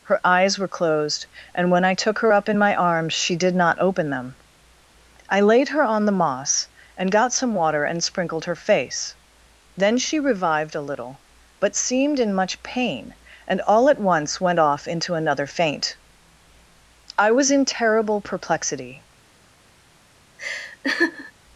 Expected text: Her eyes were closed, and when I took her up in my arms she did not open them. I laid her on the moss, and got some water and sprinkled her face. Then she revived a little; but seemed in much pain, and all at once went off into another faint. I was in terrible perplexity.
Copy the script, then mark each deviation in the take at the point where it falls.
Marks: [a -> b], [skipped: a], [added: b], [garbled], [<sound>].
Her eyes were closed, and when I took her up in my arms she did not open them. I laid her on the moss, and got some water and sprinkled her face. Then she revived a little; but seemed in much pain, and all at once went off into another faint. I was in terrible perplexity. [laugh]